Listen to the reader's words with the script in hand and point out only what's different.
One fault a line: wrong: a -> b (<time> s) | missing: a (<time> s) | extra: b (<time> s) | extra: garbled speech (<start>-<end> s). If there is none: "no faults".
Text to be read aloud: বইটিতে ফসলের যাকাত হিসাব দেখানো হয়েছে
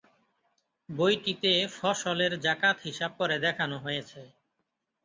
extra: করে (3.2 s)